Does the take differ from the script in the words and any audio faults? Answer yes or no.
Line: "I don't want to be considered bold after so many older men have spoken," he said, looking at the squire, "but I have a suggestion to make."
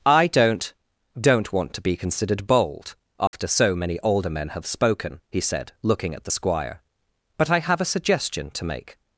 yes